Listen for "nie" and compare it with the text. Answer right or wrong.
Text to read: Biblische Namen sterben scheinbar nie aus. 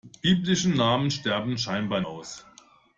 wrong